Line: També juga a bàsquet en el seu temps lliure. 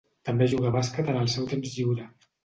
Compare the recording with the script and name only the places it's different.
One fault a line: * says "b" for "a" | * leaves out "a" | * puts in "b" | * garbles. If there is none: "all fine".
all fine